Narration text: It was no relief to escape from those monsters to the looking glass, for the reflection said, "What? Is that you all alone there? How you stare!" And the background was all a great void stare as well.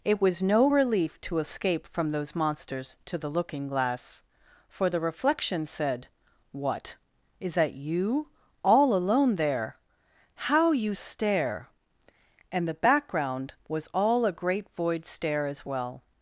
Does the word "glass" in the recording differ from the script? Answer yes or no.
no